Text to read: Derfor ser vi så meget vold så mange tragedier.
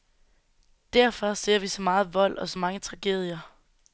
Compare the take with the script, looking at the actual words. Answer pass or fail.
fail